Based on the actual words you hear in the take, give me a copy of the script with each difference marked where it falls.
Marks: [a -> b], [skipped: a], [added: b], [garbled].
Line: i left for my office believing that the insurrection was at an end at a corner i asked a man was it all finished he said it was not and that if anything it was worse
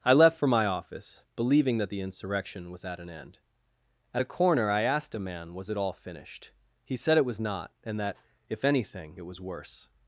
i left for my office believing that the insurrection was at an end at a corner i asked a man was it all finished he said it was not and that if anything it was worse